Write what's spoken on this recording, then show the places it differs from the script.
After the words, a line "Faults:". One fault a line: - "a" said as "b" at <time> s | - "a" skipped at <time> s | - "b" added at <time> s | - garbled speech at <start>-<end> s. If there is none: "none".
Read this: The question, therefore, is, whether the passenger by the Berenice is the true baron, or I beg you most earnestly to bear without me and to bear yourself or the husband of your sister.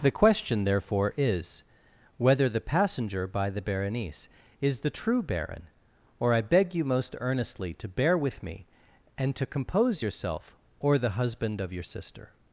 The question, therefore, is, whether the passenger by the Berenice is the true baron, or I beg you most earnestly to bear with me and to compose yourself or the husband of your sister.
Faults:
- "without" said as "with" at 8.2 s
- "bear" said as "compose" at 9.4 s